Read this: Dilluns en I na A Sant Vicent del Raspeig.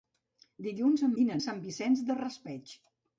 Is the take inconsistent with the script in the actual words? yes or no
no